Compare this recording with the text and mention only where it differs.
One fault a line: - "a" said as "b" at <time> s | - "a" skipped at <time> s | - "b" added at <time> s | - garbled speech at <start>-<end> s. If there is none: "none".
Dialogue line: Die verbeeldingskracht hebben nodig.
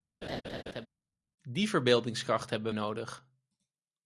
none